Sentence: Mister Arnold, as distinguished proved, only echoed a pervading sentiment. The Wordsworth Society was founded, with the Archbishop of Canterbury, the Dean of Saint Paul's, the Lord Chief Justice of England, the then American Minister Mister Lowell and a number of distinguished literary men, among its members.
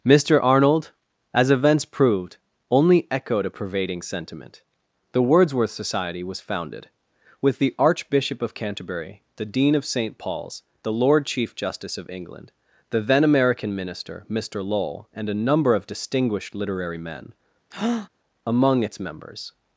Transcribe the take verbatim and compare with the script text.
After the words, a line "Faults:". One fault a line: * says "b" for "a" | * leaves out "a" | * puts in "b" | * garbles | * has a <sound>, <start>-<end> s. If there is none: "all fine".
Mister Arnold, as events proved, only echoed a pervading sentiment. The Wordsworth Society was founded, with the Archbishop of Canterbury, the Dean of Saint Paul's, the Lord Chief Justice of England, the then American Minister Mister Lowell and a number of distinguished literary men, among its members.
Faults:
* says "events" for "distinguished"
* has a breath, 17.7-18.1 s